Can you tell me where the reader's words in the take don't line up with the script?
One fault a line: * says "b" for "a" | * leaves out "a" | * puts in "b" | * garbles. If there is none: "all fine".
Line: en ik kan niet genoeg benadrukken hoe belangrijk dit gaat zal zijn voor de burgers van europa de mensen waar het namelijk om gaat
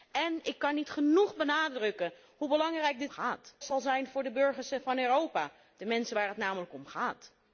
all fine